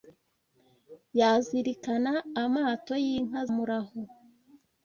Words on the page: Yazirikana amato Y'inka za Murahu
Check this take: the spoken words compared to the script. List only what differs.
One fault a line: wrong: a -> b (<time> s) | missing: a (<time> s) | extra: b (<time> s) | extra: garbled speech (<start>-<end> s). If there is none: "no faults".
missing: za (3.4 s)